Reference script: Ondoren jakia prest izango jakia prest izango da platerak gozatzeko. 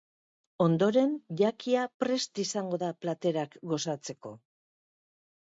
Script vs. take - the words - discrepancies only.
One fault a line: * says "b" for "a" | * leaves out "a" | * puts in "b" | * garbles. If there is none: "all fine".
* leaves out "jakia prest izango"